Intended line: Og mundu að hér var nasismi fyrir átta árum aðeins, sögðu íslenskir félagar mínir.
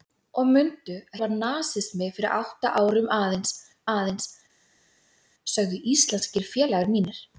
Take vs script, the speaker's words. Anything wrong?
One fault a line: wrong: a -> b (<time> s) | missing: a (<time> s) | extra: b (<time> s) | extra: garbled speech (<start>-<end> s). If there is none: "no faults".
missing: hér (1.2 s)
extra: aðeins (3.9 s)